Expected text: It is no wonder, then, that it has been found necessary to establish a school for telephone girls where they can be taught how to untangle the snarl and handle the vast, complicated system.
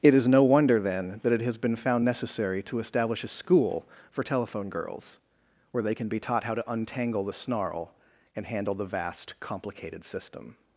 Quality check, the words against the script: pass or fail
pass